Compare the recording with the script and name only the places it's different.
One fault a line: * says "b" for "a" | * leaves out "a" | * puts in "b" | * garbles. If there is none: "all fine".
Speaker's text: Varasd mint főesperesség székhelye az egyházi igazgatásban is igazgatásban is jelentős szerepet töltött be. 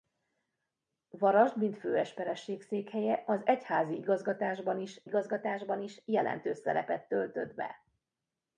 all fine